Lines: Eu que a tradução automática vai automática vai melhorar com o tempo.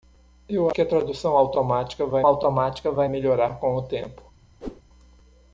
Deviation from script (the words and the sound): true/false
true